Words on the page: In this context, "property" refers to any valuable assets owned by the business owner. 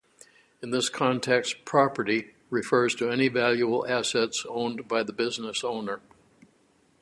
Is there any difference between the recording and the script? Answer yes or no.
no